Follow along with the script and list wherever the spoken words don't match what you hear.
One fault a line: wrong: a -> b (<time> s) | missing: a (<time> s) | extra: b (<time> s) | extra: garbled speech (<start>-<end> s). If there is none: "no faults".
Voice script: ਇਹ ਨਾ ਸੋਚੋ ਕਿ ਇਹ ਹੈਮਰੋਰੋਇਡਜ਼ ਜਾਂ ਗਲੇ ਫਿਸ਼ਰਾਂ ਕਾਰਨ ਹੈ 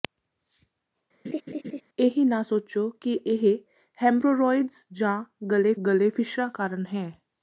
extra: ਗਲੇ (5.9 s)